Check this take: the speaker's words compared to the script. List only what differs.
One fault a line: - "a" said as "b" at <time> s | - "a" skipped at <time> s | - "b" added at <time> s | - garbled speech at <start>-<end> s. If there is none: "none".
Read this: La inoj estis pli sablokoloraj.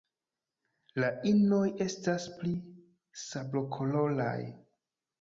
- "estis" said as "estas" at 1.9 s